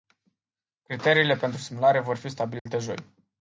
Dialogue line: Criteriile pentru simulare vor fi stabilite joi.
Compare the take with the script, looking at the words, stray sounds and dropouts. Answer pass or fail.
fail